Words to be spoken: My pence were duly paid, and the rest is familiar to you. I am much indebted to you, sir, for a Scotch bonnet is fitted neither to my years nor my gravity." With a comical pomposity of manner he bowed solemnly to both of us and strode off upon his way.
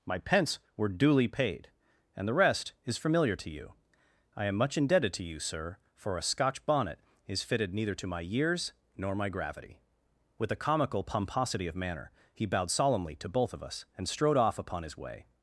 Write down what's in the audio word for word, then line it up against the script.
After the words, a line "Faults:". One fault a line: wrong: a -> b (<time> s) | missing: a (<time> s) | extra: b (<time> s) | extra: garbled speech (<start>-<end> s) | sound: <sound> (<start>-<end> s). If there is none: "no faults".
My pence were duly paid, and the rest is familiar to you. I am much indebted to you, sir, for a Scotch bonnet is fitted neither to my years nor my gravity." With a comical pomposity of manner he bowed solemnly to both of us and strode off upon his way.
Faults:
no faults